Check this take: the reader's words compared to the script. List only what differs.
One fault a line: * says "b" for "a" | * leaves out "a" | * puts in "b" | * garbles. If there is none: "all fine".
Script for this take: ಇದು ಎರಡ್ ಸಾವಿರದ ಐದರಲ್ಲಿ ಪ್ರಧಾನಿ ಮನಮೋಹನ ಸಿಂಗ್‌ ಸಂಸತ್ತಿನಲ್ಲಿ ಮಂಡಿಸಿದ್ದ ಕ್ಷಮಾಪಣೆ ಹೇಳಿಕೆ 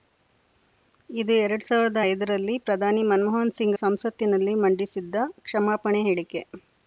all fine